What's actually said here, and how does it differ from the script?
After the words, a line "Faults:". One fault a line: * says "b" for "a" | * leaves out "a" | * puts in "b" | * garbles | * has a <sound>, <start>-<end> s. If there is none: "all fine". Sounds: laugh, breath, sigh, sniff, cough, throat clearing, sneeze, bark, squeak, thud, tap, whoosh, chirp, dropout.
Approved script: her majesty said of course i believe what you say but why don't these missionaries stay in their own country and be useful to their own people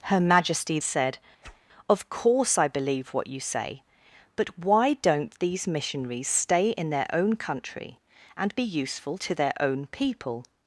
her majesty said of course i believe what you say but why don't these missionaries stay in their own country and be useful to their own people
Faults:
* has a whoosh, 1.4-1.6 s